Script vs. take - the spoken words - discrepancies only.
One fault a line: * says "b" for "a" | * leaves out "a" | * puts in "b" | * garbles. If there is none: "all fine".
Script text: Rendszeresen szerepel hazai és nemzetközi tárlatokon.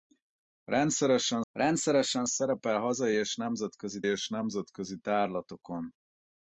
* puts in "rendszeresen"
* puts in "és nemzetközi"